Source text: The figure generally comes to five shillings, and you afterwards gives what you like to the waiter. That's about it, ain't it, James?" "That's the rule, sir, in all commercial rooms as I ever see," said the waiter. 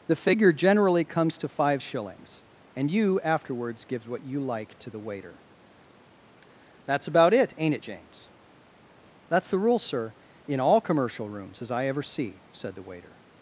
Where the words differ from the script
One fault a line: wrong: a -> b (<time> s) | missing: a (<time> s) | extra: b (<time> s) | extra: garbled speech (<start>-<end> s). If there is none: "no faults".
no faults